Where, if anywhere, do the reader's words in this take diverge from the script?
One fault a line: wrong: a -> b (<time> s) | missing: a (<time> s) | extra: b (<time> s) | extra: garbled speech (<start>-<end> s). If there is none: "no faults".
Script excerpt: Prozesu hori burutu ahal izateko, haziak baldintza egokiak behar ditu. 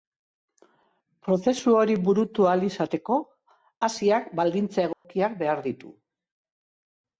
no faults